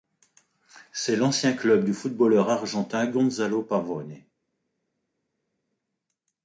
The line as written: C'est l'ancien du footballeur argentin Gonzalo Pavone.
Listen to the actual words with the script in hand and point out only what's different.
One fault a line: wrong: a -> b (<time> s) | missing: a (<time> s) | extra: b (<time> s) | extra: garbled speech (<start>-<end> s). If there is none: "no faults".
extra: club (1.5 s)